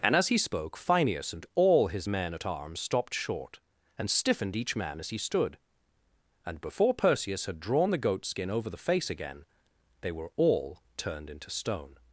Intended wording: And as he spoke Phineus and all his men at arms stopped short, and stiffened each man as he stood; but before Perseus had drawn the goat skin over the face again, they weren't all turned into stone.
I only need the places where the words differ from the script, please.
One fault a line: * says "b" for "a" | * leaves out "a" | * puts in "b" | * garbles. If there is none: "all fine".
* says "and" for "but"
* says "were" for "weren't"